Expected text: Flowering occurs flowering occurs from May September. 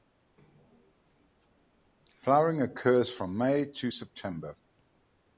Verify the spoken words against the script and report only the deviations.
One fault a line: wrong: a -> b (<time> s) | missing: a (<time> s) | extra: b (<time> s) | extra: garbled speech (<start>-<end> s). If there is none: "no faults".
missing: flowering occurs (3.1 s)
extra: to (3.6 s)